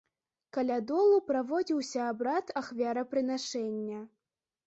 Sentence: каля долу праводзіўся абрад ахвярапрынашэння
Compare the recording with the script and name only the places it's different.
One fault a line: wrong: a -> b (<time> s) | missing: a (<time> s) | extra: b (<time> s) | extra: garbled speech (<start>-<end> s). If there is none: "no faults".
no faults